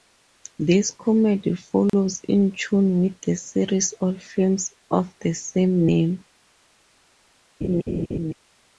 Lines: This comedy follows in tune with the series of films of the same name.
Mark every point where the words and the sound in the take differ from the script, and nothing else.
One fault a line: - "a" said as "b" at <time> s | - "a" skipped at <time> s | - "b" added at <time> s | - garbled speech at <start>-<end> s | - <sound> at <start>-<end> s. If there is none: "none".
- dropout at 1.9-1.9 s
- laugh at 7.6-8.3 s